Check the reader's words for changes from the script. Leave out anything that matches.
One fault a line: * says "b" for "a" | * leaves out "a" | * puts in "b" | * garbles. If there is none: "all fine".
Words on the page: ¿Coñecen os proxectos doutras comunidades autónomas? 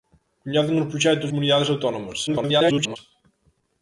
* leaves out "doutras"
* garbles